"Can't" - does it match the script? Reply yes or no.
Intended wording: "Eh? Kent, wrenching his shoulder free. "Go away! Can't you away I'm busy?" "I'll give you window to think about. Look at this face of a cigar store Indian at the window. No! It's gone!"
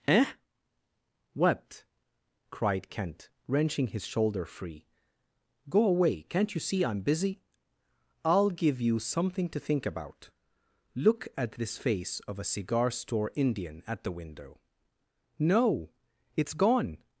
yes